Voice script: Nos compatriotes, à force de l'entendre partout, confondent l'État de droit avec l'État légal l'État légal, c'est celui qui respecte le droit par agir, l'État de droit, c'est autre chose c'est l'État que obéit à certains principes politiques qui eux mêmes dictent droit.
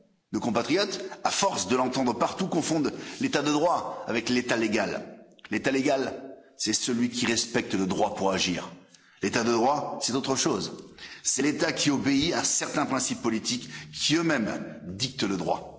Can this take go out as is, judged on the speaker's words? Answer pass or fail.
fail